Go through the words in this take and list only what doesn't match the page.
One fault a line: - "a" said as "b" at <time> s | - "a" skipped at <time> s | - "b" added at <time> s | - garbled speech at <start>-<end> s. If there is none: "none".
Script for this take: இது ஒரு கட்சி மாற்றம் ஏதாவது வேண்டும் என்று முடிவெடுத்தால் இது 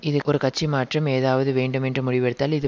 none